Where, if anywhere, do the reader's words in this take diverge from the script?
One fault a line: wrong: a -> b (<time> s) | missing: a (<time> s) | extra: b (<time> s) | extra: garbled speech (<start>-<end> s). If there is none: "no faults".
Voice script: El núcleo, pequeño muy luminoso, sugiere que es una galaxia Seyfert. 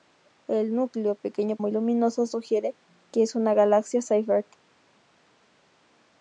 no faults